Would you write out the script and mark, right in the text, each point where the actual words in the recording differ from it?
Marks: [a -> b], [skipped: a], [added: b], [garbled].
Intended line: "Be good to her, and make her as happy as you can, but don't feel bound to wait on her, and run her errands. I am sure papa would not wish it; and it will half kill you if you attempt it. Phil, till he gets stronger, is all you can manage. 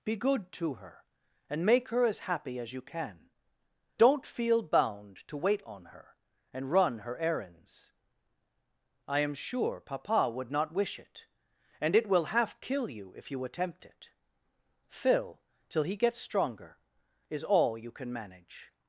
"Be good to her, and make her as happy as you can, [skipped: but] don't feel bound to wait on her, and run her errands. I am sure papa would not wish it; and it will half kill you if you attempt it. Phil, till he gets stronger, is all you can manage.